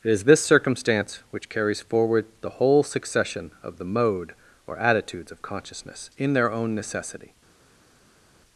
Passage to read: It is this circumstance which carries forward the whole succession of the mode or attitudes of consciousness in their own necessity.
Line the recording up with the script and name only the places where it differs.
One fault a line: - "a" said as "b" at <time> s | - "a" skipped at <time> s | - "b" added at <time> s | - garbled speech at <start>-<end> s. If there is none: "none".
none